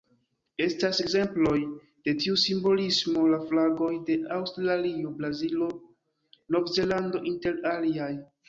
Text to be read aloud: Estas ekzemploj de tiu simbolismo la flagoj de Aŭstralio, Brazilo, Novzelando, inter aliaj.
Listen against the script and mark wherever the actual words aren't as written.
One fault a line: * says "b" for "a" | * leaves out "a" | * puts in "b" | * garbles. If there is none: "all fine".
all fine